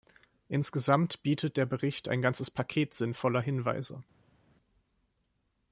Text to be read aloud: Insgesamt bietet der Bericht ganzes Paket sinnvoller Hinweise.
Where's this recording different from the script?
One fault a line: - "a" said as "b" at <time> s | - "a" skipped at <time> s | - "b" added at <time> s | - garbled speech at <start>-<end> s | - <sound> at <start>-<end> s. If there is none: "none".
- "ein" added at 2.1 s